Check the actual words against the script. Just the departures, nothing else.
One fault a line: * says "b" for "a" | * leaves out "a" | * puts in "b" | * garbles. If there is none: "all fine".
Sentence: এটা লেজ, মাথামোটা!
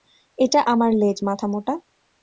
* puts in "আমার"